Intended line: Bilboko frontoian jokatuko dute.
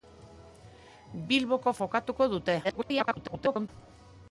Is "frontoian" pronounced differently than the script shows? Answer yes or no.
yes